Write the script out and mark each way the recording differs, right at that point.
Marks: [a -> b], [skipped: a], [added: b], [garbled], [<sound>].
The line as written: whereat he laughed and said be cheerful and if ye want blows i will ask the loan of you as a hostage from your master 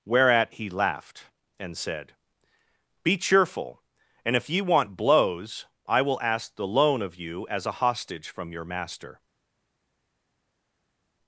whereat he laughed and said be cheerful and if ye want blows i will ask the loan of you as a hostage from your master